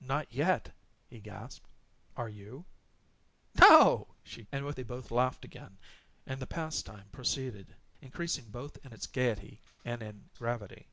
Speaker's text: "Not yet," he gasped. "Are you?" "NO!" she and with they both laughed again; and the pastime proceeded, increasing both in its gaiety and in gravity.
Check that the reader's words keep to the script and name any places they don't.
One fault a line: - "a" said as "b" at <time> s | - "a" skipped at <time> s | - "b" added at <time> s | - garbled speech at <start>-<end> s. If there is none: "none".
none